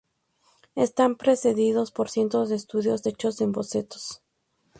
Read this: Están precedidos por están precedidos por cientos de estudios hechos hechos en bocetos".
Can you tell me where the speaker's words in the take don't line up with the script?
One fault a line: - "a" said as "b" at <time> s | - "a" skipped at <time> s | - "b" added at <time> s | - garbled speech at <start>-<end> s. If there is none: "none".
- "están precedidos por" skipped at 2.1 s
- "hechos" skipped at 3.4 s